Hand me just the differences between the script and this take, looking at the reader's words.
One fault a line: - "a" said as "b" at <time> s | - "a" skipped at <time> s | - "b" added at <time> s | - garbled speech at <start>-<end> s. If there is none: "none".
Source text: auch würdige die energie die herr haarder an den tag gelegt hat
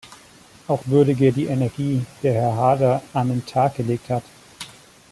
none